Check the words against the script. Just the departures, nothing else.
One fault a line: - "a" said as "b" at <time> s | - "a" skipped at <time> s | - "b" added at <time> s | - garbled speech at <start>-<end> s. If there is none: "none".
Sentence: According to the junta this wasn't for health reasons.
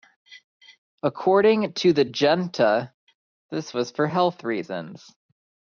- "wasn't" said as "was" at 3.7 s